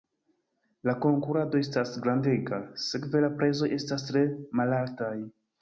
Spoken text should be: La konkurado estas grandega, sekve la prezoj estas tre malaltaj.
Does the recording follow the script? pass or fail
pass